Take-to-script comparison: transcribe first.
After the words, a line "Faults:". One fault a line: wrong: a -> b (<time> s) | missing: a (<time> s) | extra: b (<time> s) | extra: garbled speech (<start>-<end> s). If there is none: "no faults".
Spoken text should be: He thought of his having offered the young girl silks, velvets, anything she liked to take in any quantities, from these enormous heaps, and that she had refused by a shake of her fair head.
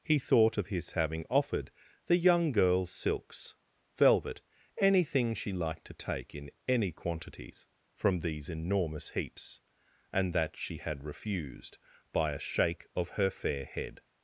He thought of his having offered the young girl silks, velvet, anything she liked to take in any quantities, from these enormous heaps, and that she had refused by a shake of her fair head.
Faults:
wrong: velvets -> velvet (4.0 s)